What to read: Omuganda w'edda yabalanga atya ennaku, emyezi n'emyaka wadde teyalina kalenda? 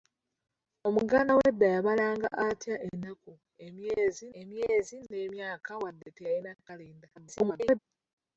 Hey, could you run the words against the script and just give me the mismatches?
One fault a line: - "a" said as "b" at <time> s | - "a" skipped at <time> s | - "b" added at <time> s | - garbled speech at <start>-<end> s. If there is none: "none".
- "emyezi" added at 4.4 s
- garbled speech at 7.2-7.8 s